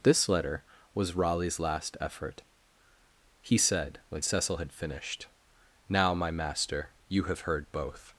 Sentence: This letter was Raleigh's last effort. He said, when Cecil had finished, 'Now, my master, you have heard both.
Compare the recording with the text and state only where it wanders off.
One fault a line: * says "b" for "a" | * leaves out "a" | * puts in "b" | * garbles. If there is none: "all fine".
all fine